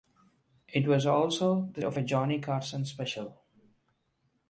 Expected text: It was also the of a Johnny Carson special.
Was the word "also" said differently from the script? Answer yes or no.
no